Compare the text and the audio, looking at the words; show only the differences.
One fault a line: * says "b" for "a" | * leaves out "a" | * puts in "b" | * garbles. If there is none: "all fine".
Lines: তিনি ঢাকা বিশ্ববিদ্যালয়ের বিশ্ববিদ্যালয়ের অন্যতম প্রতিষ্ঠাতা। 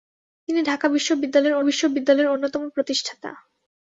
all fine